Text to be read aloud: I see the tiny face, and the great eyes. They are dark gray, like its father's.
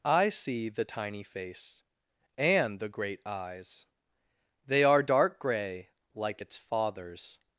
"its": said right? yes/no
yes